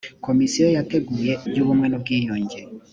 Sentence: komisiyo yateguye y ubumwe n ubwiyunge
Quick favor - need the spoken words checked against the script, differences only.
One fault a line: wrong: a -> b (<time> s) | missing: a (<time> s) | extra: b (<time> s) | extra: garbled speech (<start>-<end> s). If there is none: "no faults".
no faults